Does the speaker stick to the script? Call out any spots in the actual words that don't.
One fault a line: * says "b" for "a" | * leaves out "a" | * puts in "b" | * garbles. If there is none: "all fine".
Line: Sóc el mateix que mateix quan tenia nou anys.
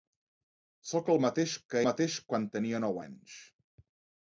all fine